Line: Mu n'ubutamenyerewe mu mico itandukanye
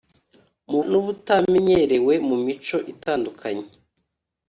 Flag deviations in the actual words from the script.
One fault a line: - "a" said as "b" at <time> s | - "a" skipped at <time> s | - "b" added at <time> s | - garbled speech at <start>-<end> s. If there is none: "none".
none